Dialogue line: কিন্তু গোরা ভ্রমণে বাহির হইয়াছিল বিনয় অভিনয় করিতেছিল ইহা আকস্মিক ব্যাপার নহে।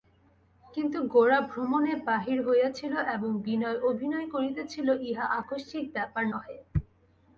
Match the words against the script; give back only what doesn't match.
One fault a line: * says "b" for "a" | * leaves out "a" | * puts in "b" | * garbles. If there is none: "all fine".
* puts in "এবং"